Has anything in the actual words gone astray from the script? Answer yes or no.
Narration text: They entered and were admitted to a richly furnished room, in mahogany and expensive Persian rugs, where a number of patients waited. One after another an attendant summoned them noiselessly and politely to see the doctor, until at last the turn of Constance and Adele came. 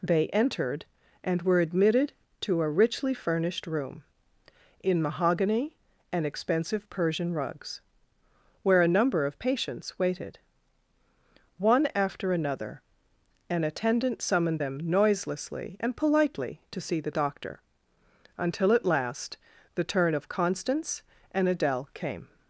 no